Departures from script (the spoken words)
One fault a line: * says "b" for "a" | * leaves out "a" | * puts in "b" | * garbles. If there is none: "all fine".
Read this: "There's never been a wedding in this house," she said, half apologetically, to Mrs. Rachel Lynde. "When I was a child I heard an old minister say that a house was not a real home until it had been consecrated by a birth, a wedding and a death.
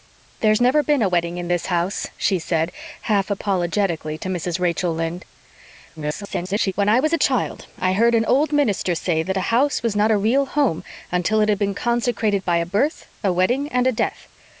* garbles